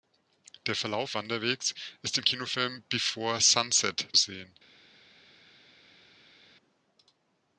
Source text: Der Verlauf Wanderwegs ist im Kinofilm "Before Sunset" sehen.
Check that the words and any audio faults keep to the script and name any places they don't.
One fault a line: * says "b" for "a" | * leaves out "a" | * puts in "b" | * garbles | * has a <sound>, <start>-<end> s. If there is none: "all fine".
all fine